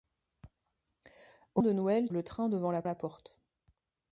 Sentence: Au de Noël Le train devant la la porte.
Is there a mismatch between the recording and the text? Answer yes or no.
no